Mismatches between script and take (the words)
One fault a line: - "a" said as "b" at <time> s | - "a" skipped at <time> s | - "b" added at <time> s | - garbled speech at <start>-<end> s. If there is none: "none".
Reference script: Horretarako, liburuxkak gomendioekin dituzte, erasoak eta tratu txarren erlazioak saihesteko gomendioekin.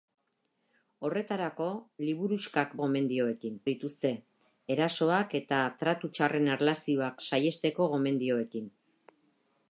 none